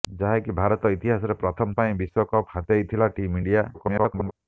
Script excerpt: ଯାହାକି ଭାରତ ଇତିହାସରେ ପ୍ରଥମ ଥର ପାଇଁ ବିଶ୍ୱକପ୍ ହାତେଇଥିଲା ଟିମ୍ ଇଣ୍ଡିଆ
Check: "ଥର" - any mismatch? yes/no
yes